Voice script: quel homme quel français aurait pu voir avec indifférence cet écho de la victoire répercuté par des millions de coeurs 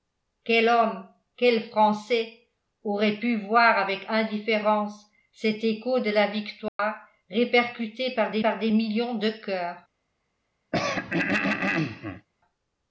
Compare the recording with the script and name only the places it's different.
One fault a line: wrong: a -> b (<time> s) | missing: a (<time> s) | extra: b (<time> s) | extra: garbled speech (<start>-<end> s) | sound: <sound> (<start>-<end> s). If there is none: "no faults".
sound: dropout (6.7-6.8 s)
extra: par des (8.4 s)
sound: throat clearing (10.7-12.3 s)